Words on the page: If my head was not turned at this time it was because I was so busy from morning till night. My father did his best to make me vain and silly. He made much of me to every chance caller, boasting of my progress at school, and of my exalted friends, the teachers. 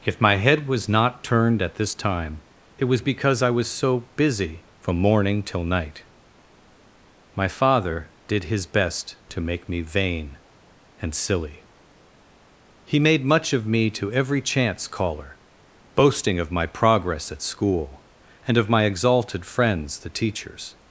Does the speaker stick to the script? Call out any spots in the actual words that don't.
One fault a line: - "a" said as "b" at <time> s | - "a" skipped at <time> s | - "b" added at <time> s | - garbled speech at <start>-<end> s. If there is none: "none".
none